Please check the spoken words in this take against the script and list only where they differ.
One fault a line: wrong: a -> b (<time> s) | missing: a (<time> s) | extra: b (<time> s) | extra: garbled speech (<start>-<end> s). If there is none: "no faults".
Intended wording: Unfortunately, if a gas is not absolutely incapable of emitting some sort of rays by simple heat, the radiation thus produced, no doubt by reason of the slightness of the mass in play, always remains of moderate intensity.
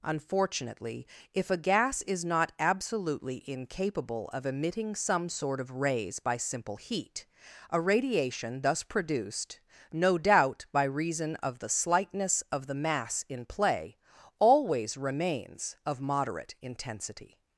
wrong: the -> a (7.7 s)